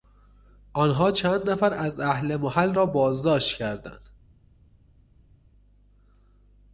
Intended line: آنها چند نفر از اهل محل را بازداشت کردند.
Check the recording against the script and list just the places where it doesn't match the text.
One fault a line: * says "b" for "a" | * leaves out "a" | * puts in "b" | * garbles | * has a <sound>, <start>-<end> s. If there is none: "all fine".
all fine